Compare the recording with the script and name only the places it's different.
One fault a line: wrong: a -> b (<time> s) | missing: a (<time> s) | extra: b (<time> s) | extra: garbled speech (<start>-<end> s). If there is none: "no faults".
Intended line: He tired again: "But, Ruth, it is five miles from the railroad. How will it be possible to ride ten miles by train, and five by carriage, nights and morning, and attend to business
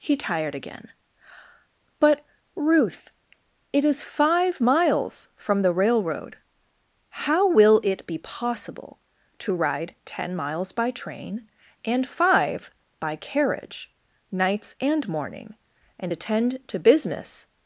no faults